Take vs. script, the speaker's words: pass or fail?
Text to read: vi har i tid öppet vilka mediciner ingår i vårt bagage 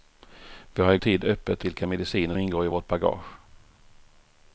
pass